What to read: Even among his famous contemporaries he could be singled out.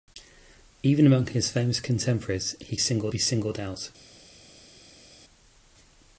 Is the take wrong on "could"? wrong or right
wrong